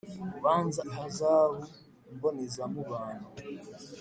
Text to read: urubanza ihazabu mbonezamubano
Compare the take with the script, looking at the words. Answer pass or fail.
pass